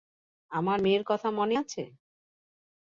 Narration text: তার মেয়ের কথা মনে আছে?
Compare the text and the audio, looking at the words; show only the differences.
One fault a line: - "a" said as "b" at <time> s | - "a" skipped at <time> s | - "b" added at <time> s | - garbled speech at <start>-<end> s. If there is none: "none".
- "তার" said as "আমার" at 0.5 s